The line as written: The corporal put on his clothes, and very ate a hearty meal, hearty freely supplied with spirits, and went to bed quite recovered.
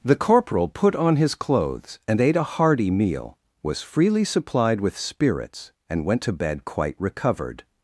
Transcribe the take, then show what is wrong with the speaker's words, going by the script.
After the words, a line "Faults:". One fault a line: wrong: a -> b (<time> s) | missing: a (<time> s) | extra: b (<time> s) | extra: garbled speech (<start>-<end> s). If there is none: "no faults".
The corporal put on his clothes, and ate a hearty meal, was freely supplied with spirits, and went to bed quite recovered.
Faults:
missing: very (2.2 s)
wrong: hearty -> was (3.6 s)